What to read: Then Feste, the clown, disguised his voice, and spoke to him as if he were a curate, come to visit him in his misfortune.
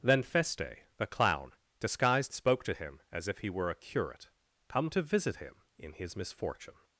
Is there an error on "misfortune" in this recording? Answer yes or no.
no